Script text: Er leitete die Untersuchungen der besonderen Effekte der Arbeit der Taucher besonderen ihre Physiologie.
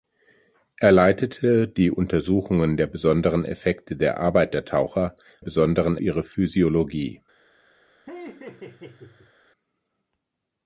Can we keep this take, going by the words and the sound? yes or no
no